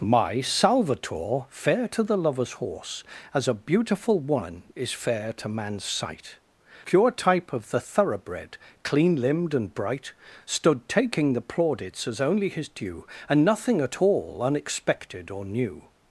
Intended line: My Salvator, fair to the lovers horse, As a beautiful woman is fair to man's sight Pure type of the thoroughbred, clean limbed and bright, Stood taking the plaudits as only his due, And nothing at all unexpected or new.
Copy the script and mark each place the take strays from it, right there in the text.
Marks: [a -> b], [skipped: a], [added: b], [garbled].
My Salvator, fair to the lovers horse, As a beautiful woman is fair to man's sight Pure type of the thoroughbred, clean limbed and bright, Stood taking the plaudits as only his due, And nothing at all unexpected or new.